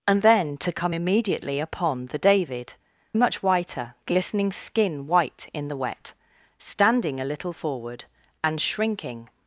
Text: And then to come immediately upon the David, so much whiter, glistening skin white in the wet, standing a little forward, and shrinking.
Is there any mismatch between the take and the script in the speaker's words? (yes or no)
yes